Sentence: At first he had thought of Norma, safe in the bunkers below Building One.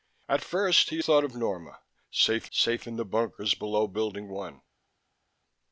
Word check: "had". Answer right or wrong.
wrong